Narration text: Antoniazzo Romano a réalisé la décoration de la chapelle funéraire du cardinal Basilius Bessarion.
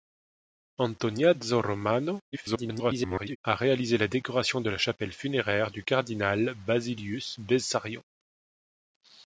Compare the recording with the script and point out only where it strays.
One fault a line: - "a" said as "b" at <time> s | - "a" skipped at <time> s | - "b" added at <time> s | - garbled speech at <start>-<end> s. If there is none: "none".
- garbled speech at 2.3-3.4 s